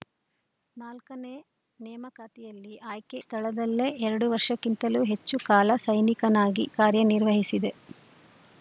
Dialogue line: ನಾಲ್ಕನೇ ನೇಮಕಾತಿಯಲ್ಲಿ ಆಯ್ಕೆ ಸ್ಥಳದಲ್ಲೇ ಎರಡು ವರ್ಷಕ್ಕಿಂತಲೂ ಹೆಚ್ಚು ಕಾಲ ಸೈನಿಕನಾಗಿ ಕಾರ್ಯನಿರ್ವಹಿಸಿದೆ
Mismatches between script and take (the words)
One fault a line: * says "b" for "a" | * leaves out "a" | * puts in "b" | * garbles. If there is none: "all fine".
all fine